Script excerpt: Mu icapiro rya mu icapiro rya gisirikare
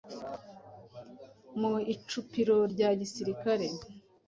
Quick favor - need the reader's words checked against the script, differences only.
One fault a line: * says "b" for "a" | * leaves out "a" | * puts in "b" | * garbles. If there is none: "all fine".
* leaves out "mu icapiro rya"